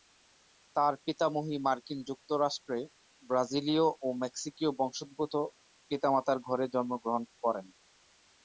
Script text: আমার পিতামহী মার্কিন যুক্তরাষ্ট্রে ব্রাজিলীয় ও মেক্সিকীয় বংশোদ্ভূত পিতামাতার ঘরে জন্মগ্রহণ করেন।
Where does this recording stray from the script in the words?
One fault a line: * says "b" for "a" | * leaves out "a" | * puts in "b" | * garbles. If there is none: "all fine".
* says "তার" for "আমার"